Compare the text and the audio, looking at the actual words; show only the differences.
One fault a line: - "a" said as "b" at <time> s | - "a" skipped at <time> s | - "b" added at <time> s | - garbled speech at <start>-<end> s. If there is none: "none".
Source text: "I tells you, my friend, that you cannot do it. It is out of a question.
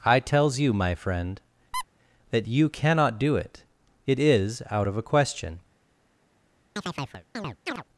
none